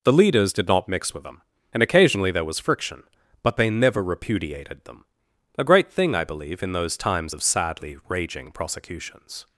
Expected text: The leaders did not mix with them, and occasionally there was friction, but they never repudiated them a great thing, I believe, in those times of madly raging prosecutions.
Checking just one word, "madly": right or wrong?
wrong